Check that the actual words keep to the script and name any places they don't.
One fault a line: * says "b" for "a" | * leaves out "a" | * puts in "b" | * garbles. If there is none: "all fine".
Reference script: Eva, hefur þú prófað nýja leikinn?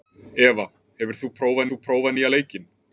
* puts in "þú prófað"